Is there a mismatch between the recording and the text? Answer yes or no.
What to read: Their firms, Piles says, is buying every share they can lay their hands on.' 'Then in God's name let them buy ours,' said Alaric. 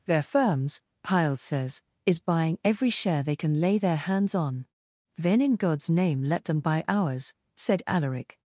no